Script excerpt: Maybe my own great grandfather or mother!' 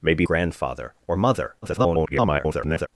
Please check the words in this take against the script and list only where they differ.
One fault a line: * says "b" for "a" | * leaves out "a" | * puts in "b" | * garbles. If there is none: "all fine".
* leaves out "my own great"
* garbles